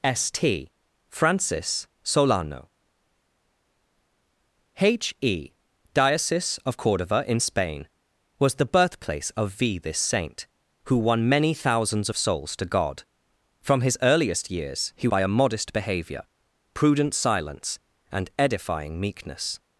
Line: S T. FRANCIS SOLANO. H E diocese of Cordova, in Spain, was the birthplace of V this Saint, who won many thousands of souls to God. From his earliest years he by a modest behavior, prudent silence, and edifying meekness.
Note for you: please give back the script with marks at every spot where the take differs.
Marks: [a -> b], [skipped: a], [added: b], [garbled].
S T. FRANCIS SOLANO. H E diocese of Cordova, in Spain, was the birthplace of V this Saint, who won many thousands of souls to God. From his earliest years he by a modest behavior, prudent silence, and edifying meekness.